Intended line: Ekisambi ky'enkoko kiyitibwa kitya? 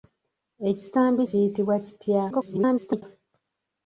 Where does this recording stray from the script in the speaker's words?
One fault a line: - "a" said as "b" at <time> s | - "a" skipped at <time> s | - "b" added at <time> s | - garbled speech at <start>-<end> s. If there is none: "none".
- "ky'enkoko" skipped at 1.2 s
- garbled speech at 2.3-3.0 s